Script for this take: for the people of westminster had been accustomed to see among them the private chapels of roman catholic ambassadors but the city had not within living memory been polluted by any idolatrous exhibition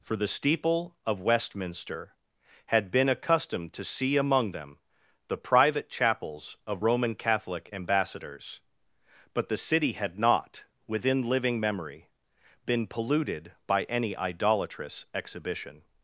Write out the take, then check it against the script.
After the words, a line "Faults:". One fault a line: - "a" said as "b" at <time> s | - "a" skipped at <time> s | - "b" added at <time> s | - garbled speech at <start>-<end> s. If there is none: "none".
for the steeple of westminster had been accustomed to see among them the private chapels of roman catholic ambassadors but the city had not within living memory been polluted by any idolatrous exhibition
Faults:
- "people" said as "steeple" at 0.3 s